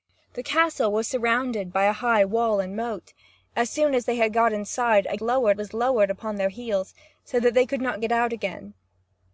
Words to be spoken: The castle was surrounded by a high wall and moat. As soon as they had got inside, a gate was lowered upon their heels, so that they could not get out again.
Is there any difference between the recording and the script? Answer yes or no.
yes